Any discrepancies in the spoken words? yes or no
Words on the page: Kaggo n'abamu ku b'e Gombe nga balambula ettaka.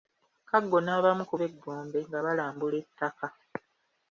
no